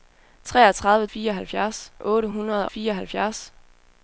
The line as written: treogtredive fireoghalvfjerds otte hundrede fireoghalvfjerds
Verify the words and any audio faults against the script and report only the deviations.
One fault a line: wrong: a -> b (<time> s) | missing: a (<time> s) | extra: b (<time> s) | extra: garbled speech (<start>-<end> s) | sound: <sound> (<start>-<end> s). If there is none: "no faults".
no faults